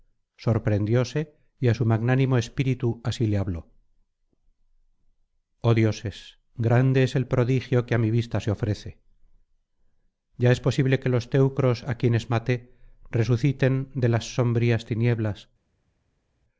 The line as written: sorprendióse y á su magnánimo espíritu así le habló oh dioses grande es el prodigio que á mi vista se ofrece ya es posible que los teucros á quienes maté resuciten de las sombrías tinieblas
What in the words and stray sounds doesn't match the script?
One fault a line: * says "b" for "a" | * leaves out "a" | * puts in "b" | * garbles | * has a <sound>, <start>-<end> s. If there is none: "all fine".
all fine